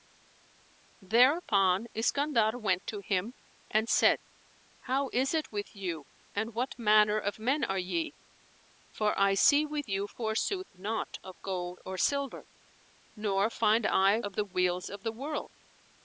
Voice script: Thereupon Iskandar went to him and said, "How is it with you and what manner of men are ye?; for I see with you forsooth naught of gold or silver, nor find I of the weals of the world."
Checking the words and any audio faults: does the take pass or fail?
pass